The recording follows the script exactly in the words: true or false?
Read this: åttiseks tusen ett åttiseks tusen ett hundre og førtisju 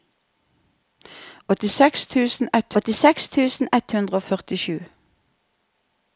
true